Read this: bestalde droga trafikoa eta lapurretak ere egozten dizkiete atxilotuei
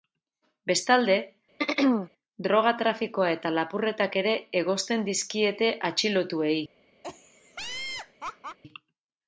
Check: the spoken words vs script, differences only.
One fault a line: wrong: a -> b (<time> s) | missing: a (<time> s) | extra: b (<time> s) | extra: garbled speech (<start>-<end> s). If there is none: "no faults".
no faults